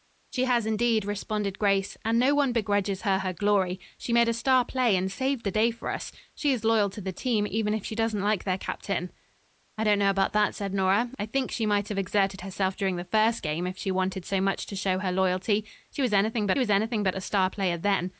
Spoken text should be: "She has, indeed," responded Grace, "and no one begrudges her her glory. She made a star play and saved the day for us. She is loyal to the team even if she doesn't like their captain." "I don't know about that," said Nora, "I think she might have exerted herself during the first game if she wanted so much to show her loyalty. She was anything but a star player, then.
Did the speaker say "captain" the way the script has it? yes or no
yes